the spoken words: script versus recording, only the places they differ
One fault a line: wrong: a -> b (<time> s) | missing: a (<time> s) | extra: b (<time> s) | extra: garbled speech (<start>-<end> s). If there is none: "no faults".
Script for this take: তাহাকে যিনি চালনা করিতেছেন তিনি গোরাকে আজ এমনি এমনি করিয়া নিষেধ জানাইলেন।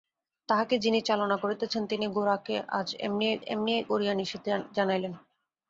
no faults